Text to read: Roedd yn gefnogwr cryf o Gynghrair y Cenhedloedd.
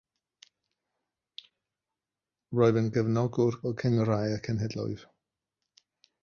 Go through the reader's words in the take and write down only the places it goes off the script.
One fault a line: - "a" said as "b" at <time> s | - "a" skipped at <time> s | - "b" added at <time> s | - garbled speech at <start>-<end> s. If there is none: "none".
- "cryf" skipped at 3.6 s